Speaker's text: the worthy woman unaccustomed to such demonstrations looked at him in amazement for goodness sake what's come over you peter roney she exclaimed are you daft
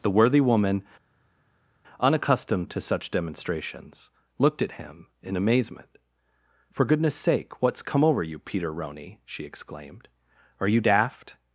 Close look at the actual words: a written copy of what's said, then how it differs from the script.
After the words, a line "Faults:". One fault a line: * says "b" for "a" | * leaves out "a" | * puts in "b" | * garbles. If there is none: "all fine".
the worthy woman unaccustomed to such demonstrations looked at him in amazement for goodness sake what's come over you peter roney she exclaimed are you daft
Faults:
all fine